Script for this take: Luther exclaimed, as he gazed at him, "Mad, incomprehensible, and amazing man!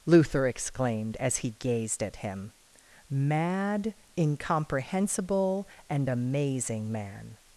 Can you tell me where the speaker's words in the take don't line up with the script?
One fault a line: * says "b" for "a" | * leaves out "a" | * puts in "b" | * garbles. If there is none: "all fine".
all fine